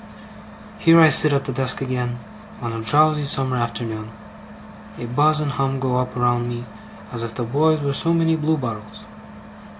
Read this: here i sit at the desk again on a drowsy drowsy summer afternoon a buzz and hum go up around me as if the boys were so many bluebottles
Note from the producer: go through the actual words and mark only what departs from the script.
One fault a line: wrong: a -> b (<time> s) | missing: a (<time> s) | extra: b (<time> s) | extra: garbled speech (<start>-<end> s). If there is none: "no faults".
missing: drowsy (3.2 s)